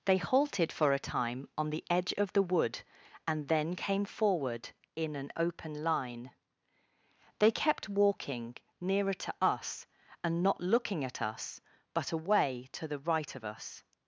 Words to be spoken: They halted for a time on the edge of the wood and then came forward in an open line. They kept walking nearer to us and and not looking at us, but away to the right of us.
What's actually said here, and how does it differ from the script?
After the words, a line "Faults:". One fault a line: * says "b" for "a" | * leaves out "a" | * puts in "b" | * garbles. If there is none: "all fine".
They halted for a time on the edge of the wood and then came forward in an open line. They kept walking nearer to us and not looking at us, but away to the right of us.
Faults:
* leaves out "and"